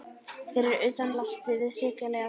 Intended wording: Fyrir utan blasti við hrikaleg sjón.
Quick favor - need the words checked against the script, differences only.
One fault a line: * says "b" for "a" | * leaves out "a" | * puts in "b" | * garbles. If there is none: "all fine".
all fine